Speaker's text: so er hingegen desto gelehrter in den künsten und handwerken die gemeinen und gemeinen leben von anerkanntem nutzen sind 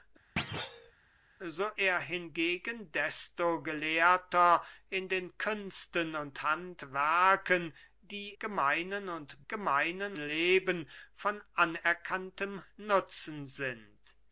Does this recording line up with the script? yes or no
yes